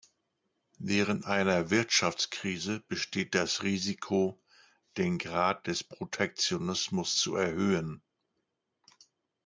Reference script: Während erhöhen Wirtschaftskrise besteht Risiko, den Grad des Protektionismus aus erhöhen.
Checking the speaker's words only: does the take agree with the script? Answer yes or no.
no